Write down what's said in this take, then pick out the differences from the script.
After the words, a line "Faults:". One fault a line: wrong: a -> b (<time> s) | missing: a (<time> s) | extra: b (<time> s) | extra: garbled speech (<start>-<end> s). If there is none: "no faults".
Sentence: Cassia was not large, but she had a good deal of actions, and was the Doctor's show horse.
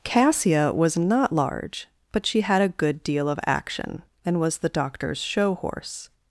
Cassia was not large, but she had a good deal of action, and was the Doctor's show horse.
Faults:
wrong: actions -> action (3.5 s)